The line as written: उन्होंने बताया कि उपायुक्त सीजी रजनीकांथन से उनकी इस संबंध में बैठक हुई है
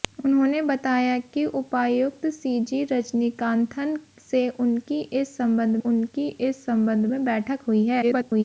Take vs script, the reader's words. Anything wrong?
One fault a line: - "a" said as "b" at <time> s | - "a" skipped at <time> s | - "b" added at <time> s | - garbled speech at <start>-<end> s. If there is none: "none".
- "उनकी इस संबंध" added at 5.8 s
- garbled speech at 8.0-8.4 s